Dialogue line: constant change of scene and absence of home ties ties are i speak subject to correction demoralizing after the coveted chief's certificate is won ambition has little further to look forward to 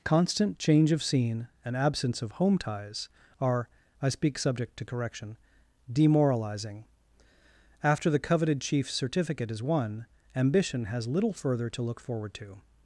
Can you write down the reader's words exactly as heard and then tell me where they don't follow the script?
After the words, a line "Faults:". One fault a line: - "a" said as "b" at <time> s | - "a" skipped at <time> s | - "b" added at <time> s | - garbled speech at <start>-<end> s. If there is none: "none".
constant change of scene and absence of home ties are i speak subject to correction demoralizing after the coveted chief's certificate is won ambition has little further to look forward to
Faults:
- "ties" skipped at 3.1 s